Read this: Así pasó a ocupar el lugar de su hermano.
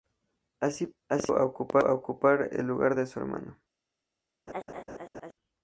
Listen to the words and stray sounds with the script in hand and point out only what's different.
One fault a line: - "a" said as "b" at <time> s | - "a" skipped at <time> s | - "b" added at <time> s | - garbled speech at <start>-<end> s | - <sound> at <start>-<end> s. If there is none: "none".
- laugh at 4.5-5.3 s